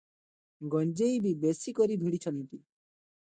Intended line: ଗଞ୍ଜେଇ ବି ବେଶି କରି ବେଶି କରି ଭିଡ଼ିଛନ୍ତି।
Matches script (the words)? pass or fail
fail